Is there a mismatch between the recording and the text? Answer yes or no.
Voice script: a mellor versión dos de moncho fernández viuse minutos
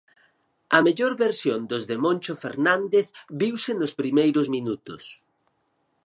yes